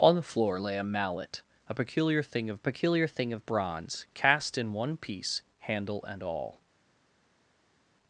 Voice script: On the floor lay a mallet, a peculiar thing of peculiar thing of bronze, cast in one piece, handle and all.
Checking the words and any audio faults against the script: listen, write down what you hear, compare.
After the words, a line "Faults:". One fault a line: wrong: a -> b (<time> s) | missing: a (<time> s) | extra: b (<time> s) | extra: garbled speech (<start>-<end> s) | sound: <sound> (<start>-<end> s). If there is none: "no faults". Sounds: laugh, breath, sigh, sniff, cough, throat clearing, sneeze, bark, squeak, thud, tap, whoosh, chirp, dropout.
On the floor lay a mallet, a peculiar thing of peculiar thing of bronze, cast in one piece, handle and all.
Faults:
no faults